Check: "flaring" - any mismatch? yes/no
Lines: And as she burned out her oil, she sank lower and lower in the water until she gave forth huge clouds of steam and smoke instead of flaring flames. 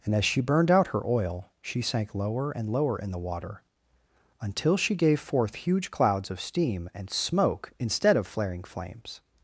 no